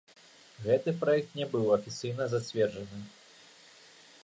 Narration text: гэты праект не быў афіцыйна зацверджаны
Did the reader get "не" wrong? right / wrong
right